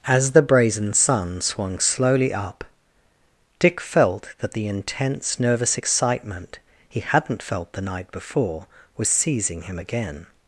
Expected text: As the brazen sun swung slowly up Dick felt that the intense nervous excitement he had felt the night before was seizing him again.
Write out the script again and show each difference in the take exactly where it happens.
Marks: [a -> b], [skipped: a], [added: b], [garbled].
As the brazen sun swung slowly up Dick felt that the intense nervous excitement he [had -> hadn't] felt the night before was seizing him again.